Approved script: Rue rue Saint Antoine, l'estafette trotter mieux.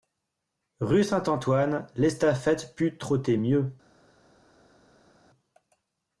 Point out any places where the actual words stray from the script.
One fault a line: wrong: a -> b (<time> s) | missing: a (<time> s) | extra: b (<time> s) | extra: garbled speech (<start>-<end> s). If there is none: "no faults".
missing: rue (1.0 s)
extra: put (2.8 s)